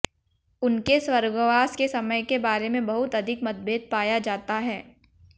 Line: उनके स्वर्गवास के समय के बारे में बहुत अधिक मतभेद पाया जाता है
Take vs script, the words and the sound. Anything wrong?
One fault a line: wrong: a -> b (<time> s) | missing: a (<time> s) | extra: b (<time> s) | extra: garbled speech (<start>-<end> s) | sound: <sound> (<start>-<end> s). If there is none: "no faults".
no faults